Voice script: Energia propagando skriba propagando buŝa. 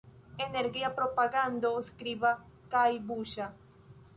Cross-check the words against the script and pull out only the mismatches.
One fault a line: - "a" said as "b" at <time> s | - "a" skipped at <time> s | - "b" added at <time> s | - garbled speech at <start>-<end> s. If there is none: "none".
- "propagando" said as "kaj" at 2.7 s